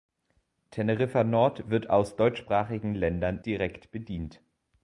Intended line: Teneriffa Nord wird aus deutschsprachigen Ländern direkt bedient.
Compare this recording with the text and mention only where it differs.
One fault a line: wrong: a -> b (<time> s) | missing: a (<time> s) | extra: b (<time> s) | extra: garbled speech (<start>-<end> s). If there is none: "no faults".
no faults